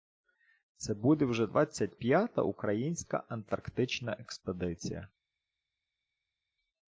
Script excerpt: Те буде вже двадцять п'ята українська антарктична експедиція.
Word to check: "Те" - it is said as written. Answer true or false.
false